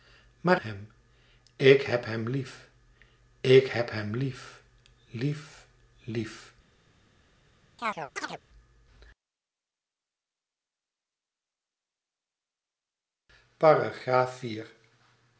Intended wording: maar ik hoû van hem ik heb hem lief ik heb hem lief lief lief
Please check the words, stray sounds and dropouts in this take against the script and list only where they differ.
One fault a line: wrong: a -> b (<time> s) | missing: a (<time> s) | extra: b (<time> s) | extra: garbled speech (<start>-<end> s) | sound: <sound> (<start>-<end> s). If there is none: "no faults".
missing: ik hoû van (0.6 s)
sound: chirp (7.8-8.4 s)